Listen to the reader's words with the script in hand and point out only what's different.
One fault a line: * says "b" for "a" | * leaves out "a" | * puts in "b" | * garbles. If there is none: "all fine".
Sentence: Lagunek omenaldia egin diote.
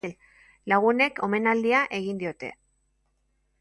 all fine